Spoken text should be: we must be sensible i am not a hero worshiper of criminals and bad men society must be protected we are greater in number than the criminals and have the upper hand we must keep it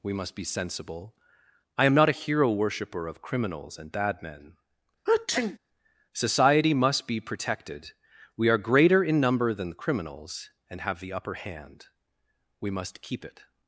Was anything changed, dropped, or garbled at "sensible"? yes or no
no